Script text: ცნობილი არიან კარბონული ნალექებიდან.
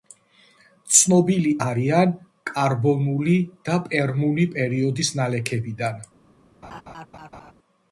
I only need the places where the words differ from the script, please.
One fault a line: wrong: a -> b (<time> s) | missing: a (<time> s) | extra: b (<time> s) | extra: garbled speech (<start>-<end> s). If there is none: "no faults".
extra: და პერმული პერიოდის (3.7 s)